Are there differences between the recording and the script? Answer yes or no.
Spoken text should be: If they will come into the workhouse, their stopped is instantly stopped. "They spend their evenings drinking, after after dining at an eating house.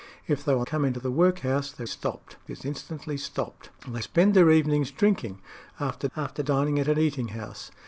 no